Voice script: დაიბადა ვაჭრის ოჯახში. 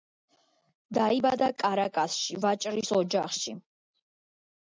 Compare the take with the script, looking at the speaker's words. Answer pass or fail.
fail